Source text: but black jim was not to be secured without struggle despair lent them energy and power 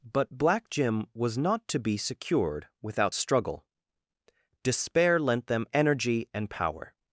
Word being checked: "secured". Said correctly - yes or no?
yes